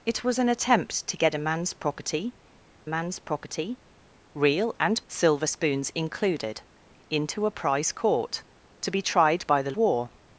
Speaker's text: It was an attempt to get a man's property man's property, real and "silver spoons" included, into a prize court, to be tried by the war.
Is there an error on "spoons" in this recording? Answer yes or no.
no